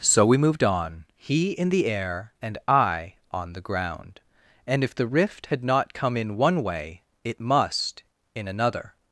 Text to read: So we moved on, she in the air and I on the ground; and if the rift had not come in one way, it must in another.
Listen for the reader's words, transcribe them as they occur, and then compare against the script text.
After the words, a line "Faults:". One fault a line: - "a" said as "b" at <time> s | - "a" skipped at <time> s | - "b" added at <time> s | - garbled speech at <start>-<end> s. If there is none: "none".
So we moved on, he in the air and I on the ground; and if the rift had not come in one way, it must in another.
Faults:
- "she" said as "he" at 1.2 s